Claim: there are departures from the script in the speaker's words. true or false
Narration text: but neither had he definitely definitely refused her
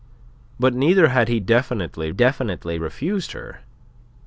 false